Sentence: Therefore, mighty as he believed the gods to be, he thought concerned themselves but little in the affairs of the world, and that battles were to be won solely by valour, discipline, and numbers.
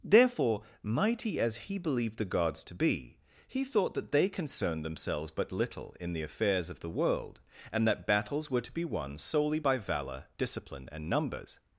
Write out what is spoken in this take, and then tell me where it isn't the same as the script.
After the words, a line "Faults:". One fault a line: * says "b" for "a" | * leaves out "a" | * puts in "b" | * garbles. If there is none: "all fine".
Therefore, mighty as he believed the gods to be, he thought that they concerned themselves but little in the affairs of the world, and that battles were to be won solely by valour, discipline, and numbers.
Faults:
* puts in "that they"